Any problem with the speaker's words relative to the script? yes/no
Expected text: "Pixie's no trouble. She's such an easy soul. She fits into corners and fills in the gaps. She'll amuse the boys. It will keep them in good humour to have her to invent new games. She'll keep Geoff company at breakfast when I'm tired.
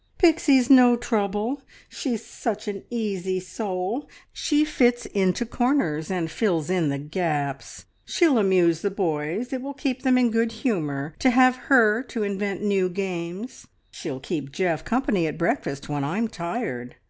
no